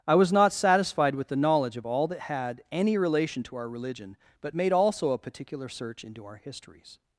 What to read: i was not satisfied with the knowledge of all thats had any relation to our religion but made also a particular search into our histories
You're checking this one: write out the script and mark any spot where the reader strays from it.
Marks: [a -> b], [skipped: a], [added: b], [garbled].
i was not satisfied with the knowledge of all [thats -> that] had any relation to our religion but made also a particular search into our histories